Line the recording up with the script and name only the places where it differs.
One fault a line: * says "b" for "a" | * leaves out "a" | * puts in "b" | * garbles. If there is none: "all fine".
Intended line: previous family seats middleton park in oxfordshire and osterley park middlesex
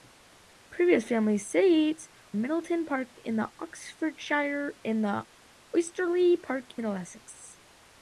all fine